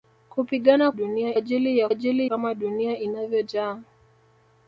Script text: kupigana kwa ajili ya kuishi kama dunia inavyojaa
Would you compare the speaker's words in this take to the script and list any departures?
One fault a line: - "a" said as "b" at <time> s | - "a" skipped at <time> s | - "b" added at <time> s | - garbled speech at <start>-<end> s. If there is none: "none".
- "kwa" said as "dunia" at 0.9 s
- "kuishi" said as "ajili" at 1.9 s